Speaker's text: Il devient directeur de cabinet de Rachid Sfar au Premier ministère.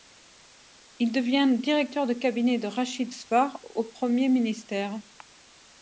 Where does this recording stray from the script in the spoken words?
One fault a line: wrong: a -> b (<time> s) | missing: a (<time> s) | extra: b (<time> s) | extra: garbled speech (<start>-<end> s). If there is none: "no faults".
no faults